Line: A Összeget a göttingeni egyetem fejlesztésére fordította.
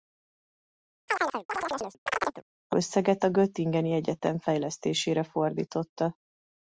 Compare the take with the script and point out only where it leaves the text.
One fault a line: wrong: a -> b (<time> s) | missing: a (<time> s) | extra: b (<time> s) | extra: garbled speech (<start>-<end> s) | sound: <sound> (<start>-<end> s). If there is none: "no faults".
sound: chirp (1.1-2.4 s)